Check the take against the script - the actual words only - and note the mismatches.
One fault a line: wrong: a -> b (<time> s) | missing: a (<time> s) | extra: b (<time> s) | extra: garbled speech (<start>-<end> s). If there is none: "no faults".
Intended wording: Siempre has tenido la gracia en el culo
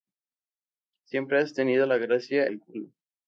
missing: en (2.5 s)